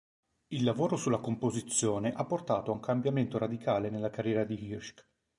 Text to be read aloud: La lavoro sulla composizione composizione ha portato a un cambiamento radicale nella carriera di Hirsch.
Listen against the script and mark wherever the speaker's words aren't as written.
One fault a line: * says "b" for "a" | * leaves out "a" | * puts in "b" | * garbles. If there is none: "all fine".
* says "Il" for "La"
* leaves out "composizione"